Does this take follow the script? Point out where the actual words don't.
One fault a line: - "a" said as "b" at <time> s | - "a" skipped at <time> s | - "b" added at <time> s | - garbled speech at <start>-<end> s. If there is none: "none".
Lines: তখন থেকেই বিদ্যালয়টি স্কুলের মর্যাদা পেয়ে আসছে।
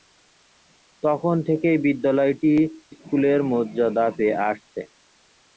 none